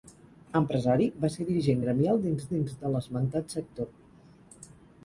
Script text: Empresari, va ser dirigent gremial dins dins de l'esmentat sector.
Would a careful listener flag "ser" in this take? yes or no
no